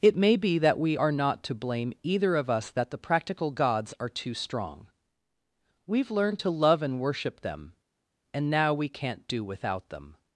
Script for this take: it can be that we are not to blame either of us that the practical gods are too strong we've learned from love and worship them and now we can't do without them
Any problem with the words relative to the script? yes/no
yes